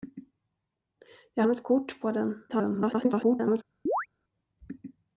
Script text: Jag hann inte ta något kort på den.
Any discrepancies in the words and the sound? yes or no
yes